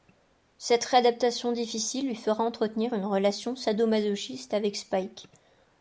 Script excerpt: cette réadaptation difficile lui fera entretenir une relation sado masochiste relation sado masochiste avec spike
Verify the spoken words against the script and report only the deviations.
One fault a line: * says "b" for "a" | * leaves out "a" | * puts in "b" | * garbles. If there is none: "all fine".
* leaves out "relation sado masochiste"